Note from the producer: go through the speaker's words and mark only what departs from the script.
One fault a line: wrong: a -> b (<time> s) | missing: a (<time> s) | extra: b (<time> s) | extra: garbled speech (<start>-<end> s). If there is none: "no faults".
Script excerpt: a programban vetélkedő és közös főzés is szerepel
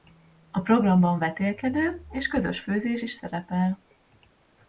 no faults